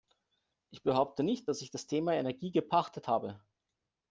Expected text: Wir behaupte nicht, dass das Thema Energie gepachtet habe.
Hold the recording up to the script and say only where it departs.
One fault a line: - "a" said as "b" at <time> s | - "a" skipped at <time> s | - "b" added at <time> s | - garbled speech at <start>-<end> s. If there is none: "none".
- "Wir" said as "Ich" at 0.7 s
- "ich" added at 1.6 s